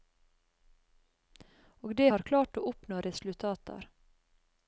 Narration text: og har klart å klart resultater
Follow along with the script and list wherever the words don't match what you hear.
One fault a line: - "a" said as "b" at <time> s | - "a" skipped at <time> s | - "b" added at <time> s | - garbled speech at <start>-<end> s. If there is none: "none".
- "det" added at 1.9 s
- "klart" said as "oppnå" at 2.7 s